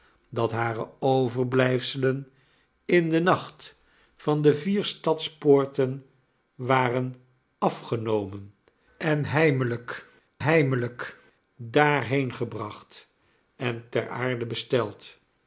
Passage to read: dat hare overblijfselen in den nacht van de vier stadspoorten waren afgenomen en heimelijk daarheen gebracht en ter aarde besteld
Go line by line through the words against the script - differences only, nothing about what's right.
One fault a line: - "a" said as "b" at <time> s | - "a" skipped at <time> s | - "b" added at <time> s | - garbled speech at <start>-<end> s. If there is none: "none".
- "heimelijk" added at 10.4 s